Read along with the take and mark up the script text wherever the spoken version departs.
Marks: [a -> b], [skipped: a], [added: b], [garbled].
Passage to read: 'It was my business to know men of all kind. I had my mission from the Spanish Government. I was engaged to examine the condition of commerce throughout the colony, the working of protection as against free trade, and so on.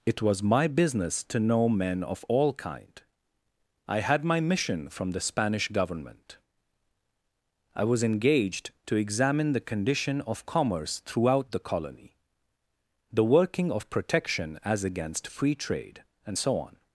'It was my business to know men of all kind. I had my mission from the Spanish Government. I was engaged to examine the condition of commerce throughout the colony, the working of protection as against free trade, and so on.